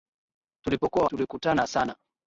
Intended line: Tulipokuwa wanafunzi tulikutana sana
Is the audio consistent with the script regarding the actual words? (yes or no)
no